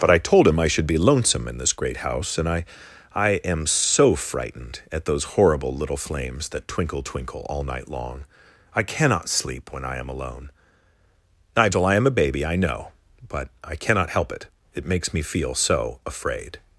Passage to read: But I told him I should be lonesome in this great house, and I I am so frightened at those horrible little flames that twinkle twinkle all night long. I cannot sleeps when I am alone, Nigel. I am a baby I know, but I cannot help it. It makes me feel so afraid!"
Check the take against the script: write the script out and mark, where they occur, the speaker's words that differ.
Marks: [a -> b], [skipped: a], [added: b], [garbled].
But I told him I should be lonesome in this great house, and I I am so frightened at those horrible little flames that twinkle twinkle all night long. I cannot [sleeps -> sleep] when I am alone, Nigel. I am a baby I know, but I cannot help it. It makes me feel so afraid!"